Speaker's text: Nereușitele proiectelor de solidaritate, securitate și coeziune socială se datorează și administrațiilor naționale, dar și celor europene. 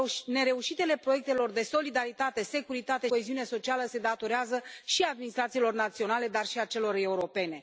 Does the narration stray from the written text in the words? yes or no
yes